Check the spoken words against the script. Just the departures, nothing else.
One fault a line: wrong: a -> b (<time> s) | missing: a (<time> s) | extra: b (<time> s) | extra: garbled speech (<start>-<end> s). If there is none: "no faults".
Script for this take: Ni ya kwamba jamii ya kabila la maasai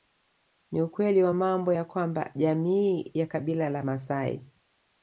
extra: ukweli wa mambo (0.8 s)